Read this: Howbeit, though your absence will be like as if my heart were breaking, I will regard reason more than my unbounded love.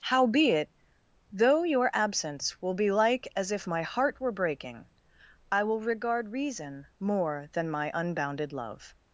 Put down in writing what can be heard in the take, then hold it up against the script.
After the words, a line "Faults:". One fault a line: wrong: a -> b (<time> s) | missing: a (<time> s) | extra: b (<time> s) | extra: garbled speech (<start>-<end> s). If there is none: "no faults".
Howbeit, though your absence will be like as if my heart were breaking, I will regard reason more than my unbounded love.
Faults:
no faults